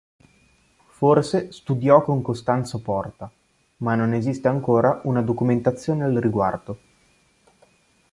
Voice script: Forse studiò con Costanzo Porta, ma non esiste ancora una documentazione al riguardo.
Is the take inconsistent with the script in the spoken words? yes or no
no